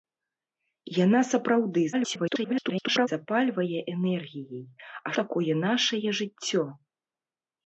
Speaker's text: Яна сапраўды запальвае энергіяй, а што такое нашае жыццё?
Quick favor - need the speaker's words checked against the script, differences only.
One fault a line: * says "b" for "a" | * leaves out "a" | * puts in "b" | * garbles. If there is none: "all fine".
* garbles
* leaves out "што"